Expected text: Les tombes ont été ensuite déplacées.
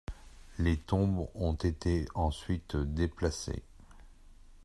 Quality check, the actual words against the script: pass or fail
pass